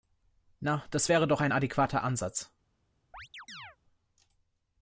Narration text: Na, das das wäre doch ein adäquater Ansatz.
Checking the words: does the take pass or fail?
fail